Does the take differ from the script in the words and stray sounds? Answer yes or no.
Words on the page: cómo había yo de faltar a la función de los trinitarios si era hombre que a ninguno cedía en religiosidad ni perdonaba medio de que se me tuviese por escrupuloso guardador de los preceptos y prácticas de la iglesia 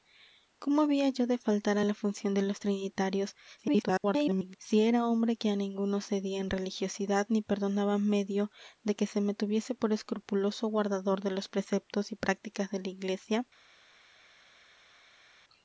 yes